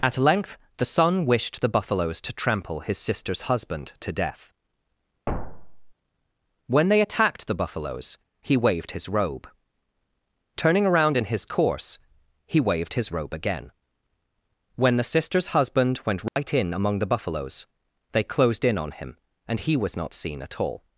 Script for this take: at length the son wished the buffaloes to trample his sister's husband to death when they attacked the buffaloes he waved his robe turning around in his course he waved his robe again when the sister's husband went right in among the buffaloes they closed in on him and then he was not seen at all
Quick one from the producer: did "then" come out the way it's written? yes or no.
no